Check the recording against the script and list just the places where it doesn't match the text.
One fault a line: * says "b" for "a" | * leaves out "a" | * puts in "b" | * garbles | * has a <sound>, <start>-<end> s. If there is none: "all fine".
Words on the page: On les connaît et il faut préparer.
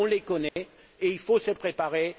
* has a dropout, 0.5-0.6 s
* puts in "se"